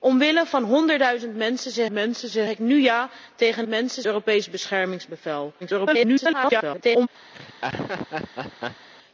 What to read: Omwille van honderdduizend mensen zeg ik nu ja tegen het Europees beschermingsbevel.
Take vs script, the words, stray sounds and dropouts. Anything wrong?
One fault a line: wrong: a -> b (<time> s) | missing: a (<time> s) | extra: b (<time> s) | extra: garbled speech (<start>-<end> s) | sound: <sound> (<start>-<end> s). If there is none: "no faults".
extra: mensen zeg (1.9 s)
wrong: het -> mensen (3.7 s)
extra: garbled speech (5.6-7.1 s)
sound: laugh (7.3-8.9 s)